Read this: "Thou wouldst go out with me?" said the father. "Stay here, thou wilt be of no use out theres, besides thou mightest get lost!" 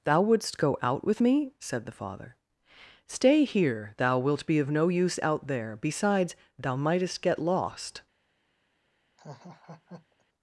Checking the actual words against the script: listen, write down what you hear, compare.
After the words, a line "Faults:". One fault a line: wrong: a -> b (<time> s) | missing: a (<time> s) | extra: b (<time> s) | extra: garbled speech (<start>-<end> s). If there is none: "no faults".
"Thou wouldst go out with me?" said the father. "Stay here, thou wilt be of no use out there, besides thou mightest get lost!"
Faults:
wrong: theres -> there (5.5 s)